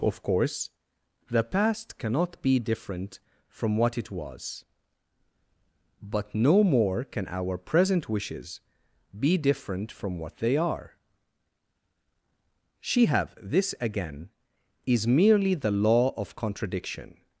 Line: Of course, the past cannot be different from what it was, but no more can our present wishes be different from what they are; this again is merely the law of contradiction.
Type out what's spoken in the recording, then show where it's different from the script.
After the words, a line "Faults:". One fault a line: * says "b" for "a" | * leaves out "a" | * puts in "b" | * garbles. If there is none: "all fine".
Of course, the past cannot be different from what it was, but no more can our present wishes be different from what they are; she have this again is merely the law of contradiction.
Faults:
* puts in "she have"